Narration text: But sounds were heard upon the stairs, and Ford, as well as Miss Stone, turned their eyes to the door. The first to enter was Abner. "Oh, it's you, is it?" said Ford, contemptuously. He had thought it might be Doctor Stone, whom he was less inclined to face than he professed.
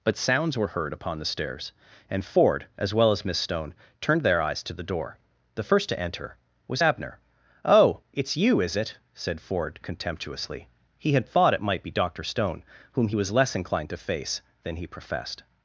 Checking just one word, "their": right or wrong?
right